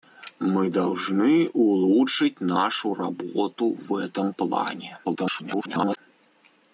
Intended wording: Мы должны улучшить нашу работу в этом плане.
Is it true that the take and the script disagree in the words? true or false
true